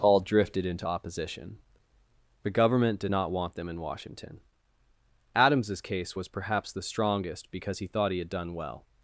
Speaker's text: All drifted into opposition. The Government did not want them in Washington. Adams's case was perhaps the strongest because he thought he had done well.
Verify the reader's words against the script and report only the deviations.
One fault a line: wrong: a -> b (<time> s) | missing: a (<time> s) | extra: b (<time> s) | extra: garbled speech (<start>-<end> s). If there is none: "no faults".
no faults